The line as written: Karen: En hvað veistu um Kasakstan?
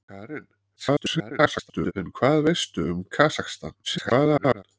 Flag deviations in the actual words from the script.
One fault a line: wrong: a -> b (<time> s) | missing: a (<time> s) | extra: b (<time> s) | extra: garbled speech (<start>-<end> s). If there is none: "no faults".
extra: garbled speech (0.8-1.9 s)
extra: garbled speech (3.8-4.6 s)